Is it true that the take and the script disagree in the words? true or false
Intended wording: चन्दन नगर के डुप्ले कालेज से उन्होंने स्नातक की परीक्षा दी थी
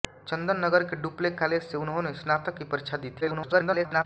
true